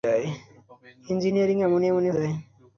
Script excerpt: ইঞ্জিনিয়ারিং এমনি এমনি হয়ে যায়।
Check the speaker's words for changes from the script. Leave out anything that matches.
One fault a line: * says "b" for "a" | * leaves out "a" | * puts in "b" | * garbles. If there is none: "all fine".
* leaves out "হয়ে"